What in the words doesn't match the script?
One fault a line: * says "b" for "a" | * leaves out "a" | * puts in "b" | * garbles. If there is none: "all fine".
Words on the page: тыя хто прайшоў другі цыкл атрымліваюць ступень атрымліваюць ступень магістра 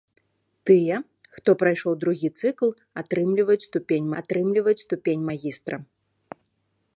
all fine